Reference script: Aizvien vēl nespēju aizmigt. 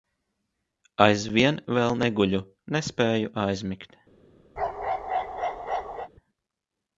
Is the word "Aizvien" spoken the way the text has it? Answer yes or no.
yes